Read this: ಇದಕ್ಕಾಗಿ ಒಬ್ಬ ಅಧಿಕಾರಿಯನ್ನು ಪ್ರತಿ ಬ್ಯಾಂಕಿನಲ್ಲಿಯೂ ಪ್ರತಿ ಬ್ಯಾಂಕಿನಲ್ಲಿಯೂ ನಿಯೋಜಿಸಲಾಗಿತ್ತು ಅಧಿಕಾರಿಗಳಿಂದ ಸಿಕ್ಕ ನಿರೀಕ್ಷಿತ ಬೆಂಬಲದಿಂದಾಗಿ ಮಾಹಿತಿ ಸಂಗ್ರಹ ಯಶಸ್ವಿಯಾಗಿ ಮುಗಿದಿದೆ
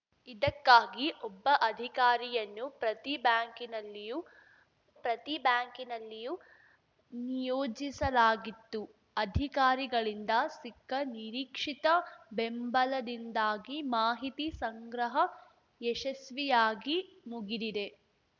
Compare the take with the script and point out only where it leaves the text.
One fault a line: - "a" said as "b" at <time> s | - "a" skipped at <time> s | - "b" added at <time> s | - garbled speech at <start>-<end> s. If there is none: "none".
none